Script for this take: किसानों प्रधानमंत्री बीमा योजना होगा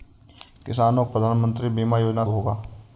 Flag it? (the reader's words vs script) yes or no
no